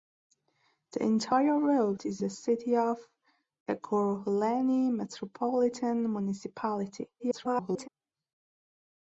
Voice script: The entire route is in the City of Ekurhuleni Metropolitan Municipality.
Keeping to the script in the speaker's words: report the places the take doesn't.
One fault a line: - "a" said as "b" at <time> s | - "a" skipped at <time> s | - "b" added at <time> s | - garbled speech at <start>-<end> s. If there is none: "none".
- "in" skipped at 2.2 s
- garbled speech at 7.2-7.9 s